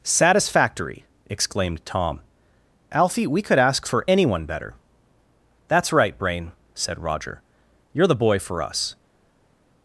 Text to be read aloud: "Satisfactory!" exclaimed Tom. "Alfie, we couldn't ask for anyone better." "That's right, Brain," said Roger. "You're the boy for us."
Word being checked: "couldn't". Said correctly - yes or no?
no